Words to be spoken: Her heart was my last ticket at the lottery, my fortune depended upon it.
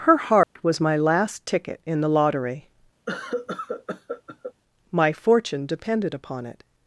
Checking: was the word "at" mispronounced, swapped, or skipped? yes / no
yes